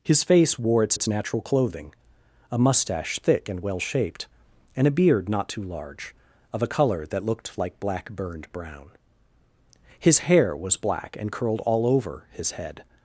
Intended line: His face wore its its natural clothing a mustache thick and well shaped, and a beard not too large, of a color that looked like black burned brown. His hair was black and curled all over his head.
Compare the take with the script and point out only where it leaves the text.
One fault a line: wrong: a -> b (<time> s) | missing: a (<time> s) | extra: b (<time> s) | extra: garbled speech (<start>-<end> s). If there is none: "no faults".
no faults